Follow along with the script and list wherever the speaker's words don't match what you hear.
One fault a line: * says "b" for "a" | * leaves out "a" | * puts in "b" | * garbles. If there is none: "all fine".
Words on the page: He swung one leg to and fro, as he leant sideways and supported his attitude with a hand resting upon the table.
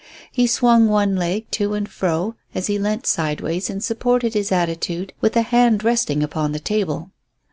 all fine